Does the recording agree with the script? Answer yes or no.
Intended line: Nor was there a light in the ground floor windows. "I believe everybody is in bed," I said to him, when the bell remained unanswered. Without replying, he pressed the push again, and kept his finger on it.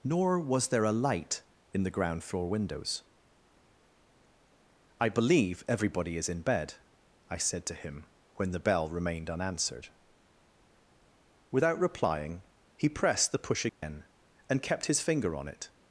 yes